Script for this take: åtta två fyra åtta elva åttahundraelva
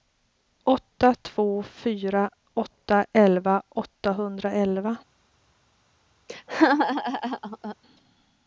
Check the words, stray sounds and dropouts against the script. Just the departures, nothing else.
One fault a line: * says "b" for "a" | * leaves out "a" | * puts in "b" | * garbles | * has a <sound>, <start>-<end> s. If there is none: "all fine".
* has a laugh, 6.3-7.8 s